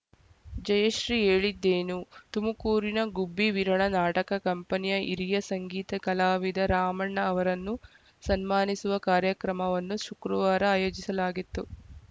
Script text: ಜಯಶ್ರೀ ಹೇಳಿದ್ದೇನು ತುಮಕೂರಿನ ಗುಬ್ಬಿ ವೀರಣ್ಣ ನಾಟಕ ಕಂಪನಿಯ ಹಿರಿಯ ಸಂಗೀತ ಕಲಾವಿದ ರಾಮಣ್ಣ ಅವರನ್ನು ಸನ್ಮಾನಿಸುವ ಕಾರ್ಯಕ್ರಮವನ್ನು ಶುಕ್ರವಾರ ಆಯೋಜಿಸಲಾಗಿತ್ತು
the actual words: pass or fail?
pass